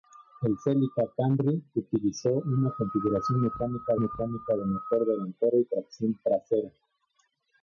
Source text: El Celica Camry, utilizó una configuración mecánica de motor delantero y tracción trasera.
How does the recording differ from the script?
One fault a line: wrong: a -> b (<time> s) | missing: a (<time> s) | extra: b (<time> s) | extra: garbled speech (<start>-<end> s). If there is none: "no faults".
extra: mecánica (4.0 s)